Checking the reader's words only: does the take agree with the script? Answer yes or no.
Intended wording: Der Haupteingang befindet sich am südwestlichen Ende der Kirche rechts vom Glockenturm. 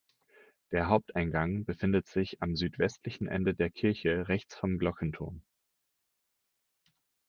yes